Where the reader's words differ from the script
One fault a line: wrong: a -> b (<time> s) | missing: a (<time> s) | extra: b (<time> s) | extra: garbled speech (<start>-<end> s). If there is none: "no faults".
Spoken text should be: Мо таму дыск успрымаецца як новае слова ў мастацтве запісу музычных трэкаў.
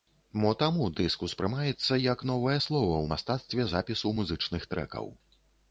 no faults